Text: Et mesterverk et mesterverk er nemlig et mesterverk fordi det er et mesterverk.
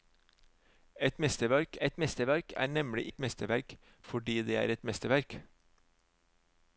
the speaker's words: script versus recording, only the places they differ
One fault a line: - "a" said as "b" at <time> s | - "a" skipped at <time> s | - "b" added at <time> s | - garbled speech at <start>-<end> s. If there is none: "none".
none